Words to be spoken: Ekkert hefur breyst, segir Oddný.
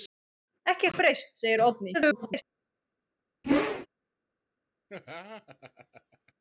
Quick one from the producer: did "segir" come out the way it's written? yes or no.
yes